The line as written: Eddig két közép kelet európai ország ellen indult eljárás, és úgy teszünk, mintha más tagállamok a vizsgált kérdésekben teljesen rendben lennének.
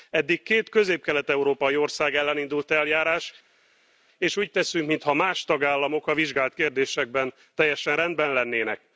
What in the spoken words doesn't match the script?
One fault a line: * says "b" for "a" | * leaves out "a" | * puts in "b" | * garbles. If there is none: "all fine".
all fine